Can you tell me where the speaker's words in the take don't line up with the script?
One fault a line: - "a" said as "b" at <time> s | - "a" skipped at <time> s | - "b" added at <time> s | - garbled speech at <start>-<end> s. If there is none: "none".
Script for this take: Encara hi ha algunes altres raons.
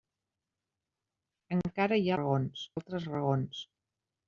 - "algunes" said as "raons" at 2.2 s